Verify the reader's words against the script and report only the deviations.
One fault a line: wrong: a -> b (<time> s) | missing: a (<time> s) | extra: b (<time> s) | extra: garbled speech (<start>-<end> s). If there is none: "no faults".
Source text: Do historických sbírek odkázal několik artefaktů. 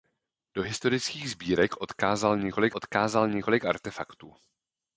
extra: odkázal několik (2.7 s)